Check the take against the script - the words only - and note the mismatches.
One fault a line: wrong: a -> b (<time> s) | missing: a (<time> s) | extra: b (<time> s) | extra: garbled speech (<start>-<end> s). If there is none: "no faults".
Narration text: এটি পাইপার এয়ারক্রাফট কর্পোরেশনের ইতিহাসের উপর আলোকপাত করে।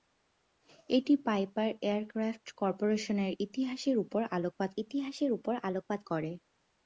extra: ইতিহাসের উপর আলোকপাত (4.8 s)